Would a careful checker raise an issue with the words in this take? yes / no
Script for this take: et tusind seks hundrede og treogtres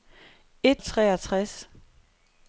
yes